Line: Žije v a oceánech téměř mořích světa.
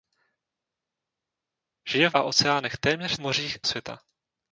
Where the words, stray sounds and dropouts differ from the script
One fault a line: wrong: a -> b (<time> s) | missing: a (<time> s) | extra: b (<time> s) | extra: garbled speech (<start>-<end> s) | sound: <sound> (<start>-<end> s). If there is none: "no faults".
no faults